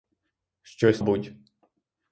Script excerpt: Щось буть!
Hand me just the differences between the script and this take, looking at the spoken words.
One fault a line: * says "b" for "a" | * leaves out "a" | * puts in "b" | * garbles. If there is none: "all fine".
all fine